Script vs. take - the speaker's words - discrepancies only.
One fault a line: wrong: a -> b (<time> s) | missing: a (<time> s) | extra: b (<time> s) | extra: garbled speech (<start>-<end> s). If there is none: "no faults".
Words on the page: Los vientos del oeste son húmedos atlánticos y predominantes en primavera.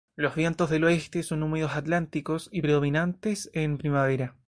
no faults